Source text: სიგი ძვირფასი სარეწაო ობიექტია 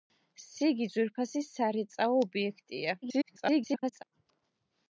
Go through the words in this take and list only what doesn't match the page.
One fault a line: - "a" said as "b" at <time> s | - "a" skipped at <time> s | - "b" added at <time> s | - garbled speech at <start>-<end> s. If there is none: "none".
- garbled speech at 3.0-4.0 s